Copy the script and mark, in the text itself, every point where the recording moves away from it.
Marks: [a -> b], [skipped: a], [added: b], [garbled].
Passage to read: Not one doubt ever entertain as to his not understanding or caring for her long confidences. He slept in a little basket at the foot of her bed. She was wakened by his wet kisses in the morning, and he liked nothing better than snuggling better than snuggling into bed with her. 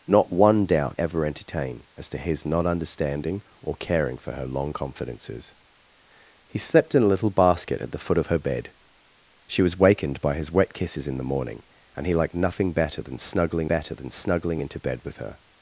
Not one doubt ever entertain as to his not understanding or caring for her long confidences. He slept in a little basket at the foot of her bed. She was wakened by his wet kisses in the morning, and he liked nothing better than snuggling better than snuggling into bed with her.